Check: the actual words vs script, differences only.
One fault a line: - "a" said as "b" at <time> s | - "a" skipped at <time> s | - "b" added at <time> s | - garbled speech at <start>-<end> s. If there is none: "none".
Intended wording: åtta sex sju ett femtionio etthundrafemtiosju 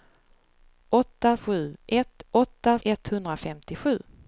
- "sex" skipped at 1.4 s
- "femtionio" said as "åtta" at 2.3 s